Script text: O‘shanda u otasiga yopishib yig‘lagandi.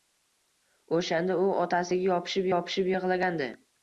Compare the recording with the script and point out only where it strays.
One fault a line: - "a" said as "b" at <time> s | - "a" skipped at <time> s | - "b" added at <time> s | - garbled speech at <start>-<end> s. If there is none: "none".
- "yopishib" added at 2.5 s